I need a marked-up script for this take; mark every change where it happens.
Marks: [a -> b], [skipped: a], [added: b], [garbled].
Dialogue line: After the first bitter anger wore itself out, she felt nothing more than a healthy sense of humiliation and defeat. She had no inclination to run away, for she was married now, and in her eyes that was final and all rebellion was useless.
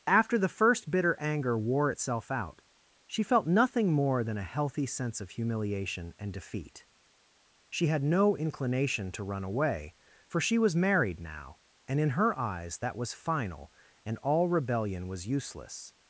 After the first bitter anger wore itself out, she felt nothing more than a healthy sense of humiliation and defeat. She had no inclination to run away, for she was married now, and in her eyes that was final and all rebellion was useless.